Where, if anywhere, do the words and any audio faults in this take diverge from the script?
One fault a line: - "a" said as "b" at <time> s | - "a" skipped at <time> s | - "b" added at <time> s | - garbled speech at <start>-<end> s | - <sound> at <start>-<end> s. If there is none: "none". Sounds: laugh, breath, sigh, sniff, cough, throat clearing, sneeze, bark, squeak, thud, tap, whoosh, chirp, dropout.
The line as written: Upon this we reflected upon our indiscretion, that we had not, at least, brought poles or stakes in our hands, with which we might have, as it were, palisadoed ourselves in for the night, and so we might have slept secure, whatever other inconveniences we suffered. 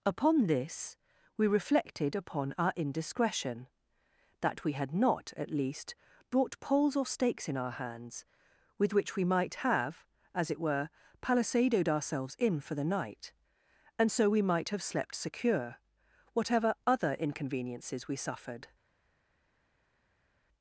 none